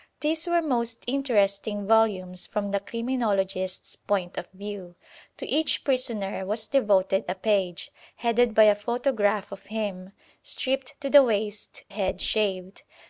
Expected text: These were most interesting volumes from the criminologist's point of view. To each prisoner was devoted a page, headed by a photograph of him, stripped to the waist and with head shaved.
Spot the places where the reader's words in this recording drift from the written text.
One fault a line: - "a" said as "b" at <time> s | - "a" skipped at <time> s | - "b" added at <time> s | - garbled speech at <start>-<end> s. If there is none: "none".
- "and with" skipped at 11.8 s